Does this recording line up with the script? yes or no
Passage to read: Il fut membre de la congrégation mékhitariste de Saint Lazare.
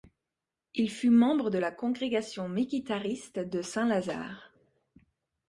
yes